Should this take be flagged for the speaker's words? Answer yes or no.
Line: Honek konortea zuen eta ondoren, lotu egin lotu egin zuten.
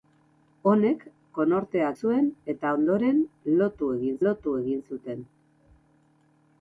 no